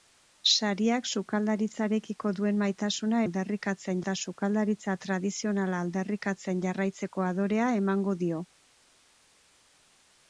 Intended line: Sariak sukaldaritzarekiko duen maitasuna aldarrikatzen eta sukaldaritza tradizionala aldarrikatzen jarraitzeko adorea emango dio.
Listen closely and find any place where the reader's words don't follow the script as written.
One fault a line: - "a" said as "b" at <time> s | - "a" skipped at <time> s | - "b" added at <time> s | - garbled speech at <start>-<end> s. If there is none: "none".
none